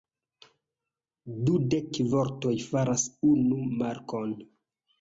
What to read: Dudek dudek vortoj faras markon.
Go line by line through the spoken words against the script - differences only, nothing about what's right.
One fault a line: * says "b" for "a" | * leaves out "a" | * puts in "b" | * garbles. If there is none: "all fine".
* leaves out "dudek"
* puts in "unu"